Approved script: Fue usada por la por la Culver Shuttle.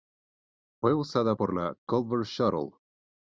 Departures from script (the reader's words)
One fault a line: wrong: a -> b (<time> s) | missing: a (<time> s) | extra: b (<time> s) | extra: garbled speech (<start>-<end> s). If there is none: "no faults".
missing: por la (1.7 s)